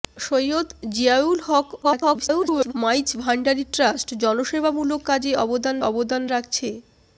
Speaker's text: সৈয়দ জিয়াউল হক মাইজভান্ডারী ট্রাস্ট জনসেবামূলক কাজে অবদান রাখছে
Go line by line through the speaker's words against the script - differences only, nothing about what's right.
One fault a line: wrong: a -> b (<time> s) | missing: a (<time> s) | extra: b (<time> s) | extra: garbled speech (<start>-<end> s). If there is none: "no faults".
extra: garbled speech (1.8-2.7 s)
extra: অবদান (5.8 s)